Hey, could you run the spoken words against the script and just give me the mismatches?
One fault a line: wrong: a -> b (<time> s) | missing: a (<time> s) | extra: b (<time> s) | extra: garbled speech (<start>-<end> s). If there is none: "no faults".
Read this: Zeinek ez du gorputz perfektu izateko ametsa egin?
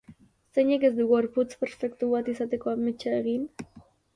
extra: bat (2.1 s)